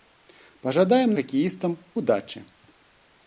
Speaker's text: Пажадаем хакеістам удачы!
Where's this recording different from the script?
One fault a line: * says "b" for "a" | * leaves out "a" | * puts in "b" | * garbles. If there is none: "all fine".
all fine